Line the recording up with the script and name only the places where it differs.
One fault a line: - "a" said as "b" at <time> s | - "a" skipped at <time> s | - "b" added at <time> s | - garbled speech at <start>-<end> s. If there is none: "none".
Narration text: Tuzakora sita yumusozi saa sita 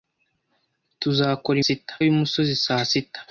none